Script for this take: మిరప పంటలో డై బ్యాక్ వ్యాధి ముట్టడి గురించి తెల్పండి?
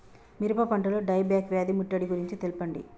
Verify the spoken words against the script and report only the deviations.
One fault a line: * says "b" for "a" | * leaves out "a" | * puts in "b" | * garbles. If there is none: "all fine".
all fine